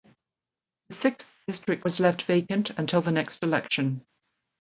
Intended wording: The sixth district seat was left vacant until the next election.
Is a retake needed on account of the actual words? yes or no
yes